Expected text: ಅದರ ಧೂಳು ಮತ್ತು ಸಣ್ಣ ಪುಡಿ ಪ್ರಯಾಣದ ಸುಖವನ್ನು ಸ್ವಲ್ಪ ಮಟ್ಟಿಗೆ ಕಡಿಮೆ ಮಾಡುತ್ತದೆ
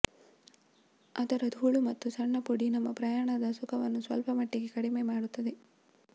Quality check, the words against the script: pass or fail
fail